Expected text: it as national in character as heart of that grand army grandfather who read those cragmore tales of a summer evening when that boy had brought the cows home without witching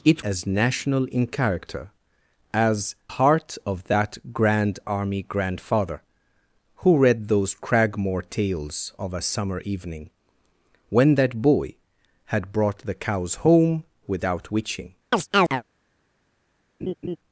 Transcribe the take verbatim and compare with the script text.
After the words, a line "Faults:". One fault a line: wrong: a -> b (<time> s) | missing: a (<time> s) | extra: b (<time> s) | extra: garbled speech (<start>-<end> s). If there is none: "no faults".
it as national in character as heart of that grand army grandfather who read those cragmore tales of a summer evening when that boy had brought the cows home without witching
Faults:
no faults